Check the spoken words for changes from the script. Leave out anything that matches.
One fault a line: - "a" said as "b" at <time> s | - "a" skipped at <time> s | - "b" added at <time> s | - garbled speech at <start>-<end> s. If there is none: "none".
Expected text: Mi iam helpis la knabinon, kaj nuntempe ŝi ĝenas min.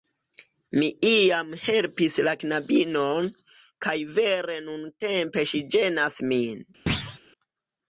- "vere" added at 4.2 s